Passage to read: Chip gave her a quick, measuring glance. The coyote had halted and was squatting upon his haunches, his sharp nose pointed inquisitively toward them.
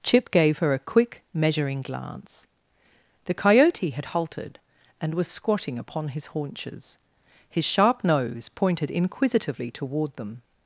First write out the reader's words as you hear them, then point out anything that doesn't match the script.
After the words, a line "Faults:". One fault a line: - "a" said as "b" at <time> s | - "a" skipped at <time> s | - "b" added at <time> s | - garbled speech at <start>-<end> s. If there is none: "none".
Chip gave her a quick, measuring glance. The coyote had halted and was squatting upon his haunches, his sharp nose pointed inquisitively toward them.
Faults:
none